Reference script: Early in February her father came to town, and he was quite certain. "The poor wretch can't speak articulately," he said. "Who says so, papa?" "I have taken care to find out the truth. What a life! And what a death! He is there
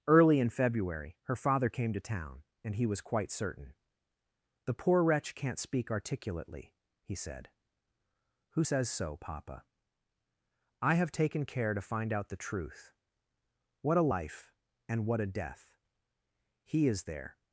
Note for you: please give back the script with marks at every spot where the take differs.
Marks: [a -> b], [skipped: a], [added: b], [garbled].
Early in February her father came to town, and he was quite certain. "The poor wretch can't speak articulately," he said. "Who says so, papa?" "I have taken care to find out the truth. What a life! And what a death! He is there